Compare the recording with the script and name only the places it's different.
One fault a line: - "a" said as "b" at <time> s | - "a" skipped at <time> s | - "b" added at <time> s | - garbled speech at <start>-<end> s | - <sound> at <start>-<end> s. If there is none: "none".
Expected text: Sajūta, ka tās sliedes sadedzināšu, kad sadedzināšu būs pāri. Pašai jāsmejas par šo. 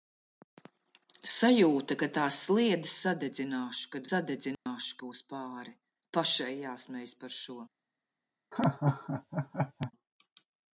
- dropout at 4.5-4.7 s
- laugh at 8.5-9.9 s